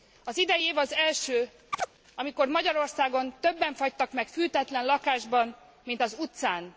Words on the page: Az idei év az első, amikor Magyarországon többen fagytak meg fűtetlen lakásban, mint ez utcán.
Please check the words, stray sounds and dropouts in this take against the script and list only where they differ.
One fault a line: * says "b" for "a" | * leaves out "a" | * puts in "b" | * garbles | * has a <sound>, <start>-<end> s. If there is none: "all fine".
* has a chirp, 1.7-1.9 s
* says "az" for "ez"